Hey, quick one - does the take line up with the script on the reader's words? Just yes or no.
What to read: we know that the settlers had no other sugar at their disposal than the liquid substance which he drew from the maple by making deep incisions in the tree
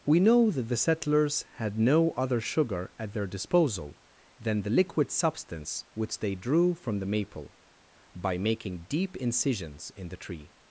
no